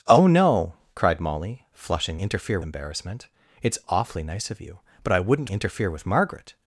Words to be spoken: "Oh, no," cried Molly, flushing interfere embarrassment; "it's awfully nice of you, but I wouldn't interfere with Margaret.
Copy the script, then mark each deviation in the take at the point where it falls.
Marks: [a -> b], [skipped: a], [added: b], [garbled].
"Oh, no," cried Molly, flushing interfere embarrassment; "it's awfully nice of you, but I wouldn't interfere with Margaret.